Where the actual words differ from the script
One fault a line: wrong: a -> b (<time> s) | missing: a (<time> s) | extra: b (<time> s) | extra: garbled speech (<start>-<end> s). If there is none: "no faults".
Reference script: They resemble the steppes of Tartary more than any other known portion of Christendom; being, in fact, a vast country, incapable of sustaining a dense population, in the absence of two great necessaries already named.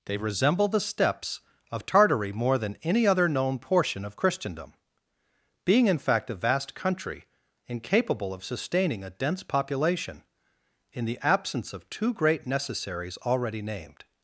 no faults